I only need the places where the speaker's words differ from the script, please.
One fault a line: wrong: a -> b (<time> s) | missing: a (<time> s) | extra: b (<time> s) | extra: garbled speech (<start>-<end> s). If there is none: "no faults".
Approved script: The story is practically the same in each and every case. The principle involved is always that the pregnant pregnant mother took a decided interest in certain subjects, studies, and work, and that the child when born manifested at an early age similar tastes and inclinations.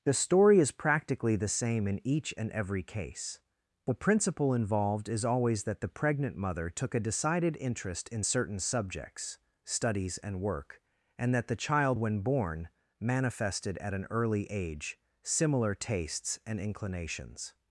missing: pregnant (6.3 s)